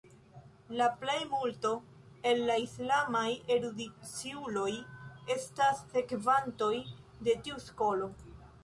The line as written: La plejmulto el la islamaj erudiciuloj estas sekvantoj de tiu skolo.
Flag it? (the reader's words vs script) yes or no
no